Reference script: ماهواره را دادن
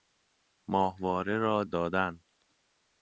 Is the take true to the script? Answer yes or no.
yes